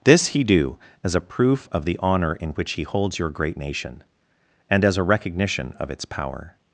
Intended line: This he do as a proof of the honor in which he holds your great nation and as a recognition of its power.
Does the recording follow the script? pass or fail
pass